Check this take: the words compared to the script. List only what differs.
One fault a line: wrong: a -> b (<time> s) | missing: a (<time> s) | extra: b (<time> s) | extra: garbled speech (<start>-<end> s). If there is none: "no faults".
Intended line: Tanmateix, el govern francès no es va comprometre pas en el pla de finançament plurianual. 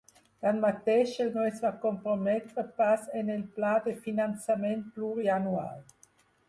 missing: govern francès (1.3 s)